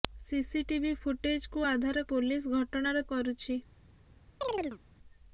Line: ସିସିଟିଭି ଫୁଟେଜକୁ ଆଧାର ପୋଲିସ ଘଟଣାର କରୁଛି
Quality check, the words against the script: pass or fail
pass